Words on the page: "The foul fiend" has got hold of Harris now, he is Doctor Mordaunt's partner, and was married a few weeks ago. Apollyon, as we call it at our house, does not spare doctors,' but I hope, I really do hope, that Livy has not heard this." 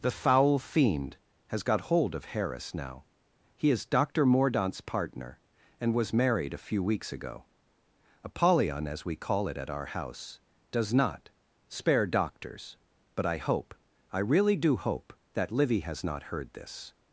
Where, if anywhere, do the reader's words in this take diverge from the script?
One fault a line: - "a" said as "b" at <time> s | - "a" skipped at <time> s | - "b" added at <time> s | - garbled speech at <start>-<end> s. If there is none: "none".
none